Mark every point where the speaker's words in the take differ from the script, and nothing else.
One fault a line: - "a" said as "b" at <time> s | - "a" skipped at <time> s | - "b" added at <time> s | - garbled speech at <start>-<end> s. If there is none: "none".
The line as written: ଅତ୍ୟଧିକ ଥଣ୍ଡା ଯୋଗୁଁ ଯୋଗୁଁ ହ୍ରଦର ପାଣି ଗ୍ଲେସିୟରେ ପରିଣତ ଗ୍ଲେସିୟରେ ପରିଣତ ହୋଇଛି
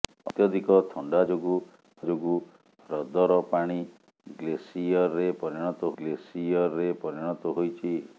none